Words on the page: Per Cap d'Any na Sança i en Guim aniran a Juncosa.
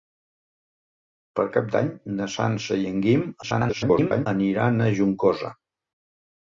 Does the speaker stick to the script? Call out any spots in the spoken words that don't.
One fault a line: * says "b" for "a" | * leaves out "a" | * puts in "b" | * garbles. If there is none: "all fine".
* garbles